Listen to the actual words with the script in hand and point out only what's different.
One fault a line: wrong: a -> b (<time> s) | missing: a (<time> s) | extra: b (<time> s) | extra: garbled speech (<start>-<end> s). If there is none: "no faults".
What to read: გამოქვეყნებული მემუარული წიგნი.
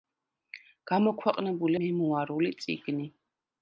no faults